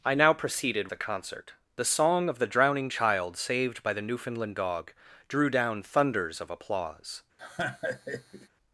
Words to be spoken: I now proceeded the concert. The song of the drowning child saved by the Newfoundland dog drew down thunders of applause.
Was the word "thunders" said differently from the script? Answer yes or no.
no